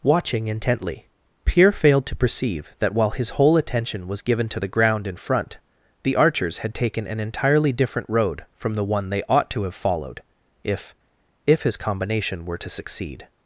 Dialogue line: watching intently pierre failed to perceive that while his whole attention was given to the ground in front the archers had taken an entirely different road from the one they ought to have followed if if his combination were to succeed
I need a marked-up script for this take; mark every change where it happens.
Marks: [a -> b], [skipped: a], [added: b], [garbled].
watching intently pierre failed to perceive that while his whole attention was given to the ground in front the archers had taken an entirely different road from the one they ought to have followed if if his combination were to succeed